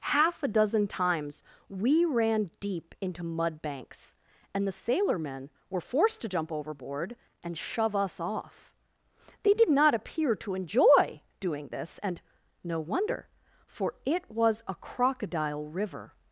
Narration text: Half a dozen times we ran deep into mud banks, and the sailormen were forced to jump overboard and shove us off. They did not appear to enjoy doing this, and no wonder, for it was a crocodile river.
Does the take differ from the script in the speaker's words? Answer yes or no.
no